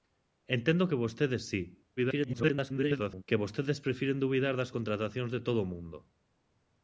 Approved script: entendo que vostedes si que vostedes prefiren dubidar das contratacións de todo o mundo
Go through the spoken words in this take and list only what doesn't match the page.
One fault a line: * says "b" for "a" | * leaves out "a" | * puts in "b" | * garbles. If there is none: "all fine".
* garbles